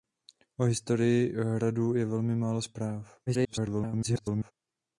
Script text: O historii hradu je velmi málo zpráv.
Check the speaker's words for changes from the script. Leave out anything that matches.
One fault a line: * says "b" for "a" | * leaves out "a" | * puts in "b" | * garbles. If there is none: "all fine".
* garbles